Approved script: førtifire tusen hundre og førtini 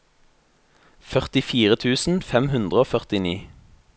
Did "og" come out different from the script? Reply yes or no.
no